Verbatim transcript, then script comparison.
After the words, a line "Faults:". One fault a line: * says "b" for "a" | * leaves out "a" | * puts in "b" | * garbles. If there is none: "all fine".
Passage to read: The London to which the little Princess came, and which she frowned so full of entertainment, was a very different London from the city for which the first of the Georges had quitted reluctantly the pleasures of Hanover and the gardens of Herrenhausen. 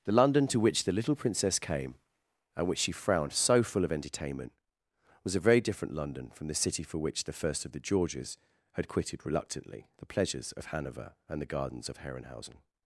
The London to which the little Princess came, and which she frowned so full of entertainment, was a very different London from the city for which the first of the Georges had quitted reluctantly the pleasures of Hanover and the gardens of Herrenhausen.
Faults:
all fine